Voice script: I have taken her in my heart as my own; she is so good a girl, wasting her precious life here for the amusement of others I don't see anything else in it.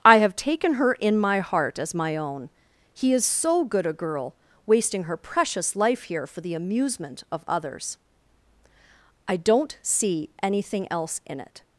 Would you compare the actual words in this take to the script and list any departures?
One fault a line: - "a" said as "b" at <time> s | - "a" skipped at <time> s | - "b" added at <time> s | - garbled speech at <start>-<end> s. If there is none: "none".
- "she" said as "he" at 2.9 s